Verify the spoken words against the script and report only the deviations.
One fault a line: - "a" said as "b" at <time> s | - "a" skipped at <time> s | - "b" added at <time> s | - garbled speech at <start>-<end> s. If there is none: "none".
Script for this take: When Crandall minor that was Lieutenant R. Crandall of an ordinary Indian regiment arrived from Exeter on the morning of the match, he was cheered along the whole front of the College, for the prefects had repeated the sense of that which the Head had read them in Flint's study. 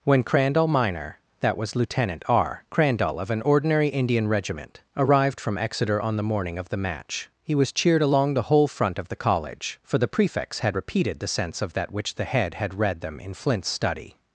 none